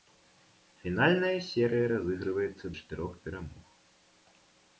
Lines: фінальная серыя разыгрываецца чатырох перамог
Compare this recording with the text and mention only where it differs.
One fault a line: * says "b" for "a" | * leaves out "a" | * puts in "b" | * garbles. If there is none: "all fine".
all fine